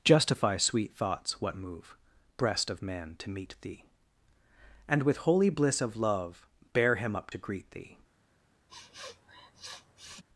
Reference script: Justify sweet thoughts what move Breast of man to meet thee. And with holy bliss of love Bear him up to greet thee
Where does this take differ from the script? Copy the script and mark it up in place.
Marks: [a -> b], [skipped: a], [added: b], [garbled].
Justify sweet thoughts what move Breast of man to meet thee. And with holy bliss of love Bear him up to greet thee